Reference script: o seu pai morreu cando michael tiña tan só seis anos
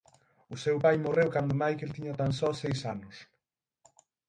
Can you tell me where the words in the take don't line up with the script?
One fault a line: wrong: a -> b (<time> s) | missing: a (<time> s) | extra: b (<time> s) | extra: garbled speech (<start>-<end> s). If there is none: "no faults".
no faults